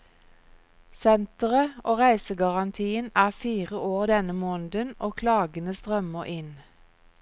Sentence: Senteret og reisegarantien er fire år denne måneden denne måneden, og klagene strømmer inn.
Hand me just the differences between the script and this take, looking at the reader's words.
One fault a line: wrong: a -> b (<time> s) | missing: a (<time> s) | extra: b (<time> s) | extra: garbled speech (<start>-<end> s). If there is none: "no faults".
missing: denne måneden (5.0 s)